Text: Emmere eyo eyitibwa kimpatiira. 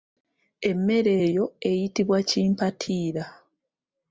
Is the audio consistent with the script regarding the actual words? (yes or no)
yes